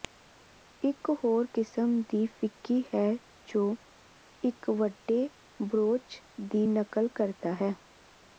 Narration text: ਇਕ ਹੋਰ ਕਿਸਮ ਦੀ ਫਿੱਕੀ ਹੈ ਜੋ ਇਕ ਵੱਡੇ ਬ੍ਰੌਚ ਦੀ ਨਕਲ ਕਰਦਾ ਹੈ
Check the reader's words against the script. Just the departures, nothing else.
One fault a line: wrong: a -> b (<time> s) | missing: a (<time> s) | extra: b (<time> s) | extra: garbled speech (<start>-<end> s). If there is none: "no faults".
no faults